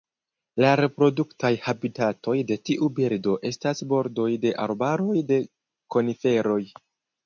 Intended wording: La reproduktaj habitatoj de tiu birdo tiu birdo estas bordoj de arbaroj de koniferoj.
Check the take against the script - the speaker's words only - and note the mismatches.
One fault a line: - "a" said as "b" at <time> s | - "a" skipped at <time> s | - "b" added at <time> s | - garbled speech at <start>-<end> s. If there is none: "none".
- "tiu birdo" skipped at 3.4 s